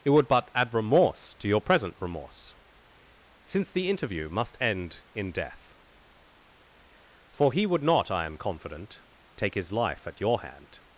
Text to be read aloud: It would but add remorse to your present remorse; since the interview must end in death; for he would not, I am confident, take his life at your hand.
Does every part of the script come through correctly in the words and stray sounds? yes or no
yes